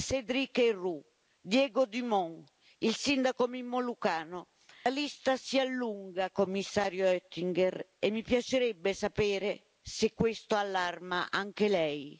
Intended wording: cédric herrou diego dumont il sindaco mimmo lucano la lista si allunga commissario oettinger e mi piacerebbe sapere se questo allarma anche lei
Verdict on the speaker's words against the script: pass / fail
pass